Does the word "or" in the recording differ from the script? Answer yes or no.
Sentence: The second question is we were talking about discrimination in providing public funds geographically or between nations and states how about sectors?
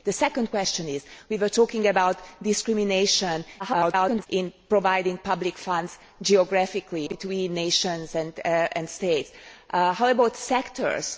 yes